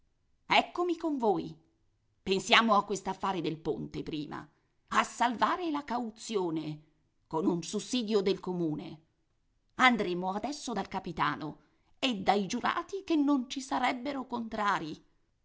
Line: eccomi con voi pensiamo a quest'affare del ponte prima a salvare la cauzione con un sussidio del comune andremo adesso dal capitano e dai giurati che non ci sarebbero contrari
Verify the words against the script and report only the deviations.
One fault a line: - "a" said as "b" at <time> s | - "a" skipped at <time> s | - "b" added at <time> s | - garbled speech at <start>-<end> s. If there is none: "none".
none